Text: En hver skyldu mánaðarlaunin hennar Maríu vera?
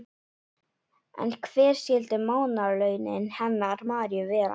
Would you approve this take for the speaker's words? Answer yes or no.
yes